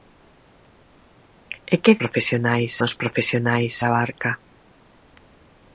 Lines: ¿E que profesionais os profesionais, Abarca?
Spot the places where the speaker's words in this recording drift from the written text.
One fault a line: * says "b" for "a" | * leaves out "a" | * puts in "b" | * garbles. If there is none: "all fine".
all fine